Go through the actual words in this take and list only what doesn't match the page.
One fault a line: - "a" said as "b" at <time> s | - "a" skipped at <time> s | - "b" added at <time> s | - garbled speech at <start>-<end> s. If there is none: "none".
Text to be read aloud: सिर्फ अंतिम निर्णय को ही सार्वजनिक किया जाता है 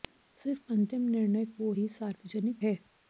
- "किया जाता" skipped at 2.6 s